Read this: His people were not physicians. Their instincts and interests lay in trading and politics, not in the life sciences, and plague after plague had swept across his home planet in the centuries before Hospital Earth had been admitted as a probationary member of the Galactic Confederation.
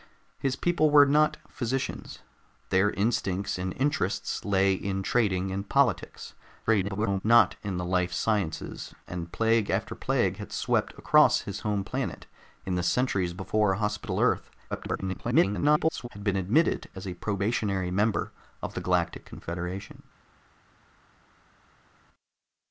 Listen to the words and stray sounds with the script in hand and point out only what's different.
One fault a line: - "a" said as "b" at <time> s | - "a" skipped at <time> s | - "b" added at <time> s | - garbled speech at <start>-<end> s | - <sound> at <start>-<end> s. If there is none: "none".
- garbled speech at 6.7-7.2 s
- garbled speech at 14.7-16.1 s